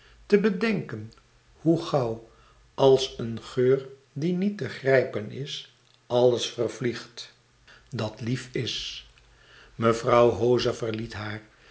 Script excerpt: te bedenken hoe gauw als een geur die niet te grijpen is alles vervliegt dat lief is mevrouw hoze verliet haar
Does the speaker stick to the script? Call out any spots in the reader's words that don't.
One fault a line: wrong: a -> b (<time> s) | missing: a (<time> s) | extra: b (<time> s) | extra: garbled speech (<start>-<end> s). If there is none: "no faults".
no faults